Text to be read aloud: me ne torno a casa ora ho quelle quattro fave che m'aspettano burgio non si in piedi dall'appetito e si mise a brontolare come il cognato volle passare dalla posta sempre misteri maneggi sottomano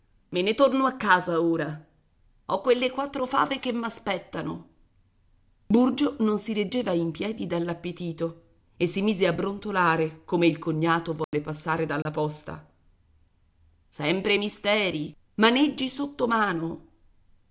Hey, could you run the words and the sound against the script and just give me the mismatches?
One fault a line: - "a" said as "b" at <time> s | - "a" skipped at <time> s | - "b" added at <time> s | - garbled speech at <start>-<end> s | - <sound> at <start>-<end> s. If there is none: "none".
- "reggeva" added at 6.5 s
- dropout at 11.2-11.3 s
- dropout at 12.0-12.1 s